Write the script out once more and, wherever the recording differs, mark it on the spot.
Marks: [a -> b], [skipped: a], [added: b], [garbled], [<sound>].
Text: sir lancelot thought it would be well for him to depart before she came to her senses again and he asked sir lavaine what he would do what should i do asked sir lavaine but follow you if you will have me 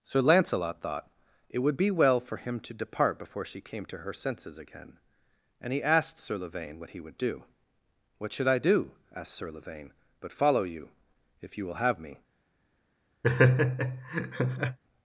sir lancelot thought it would be well for him to depart before she came to her senses again and he asked sir lavaine what he would do what should i do asked sir lavaine but follow you if you will have me [laugh]